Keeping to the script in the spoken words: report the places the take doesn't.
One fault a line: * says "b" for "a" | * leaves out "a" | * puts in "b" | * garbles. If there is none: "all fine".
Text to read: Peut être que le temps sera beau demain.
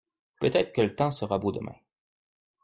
all fine